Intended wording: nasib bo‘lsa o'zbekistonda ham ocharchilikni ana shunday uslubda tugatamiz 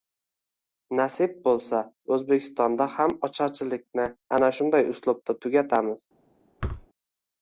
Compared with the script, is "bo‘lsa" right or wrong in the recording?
right